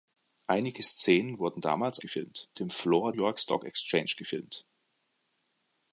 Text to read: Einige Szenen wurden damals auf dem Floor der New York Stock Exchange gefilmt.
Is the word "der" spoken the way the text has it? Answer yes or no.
no